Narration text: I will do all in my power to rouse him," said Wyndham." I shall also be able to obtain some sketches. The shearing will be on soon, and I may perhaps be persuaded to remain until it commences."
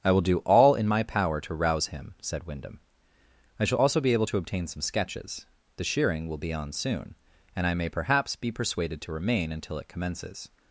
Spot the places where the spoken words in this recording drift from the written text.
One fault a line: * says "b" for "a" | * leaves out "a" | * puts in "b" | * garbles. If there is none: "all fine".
all fine